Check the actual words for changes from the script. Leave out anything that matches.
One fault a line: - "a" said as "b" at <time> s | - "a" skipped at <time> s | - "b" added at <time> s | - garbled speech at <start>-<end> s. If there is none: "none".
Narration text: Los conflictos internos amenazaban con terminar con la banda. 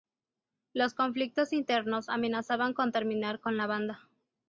none